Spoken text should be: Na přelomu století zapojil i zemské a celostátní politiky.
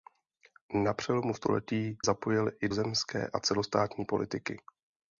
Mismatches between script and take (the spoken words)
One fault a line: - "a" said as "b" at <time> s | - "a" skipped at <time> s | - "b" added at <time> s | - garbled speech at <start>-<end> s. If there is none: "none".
none